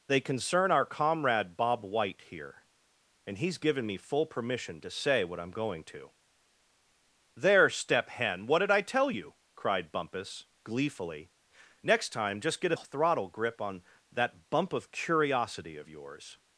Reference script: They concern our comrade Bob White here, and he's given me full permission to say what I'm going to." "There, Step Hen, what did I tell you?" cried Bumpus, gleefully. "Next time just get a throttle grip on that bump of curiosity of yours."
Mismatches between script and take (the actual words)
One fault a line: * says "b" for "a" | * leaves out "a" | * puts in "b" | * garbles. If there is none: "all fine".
all fine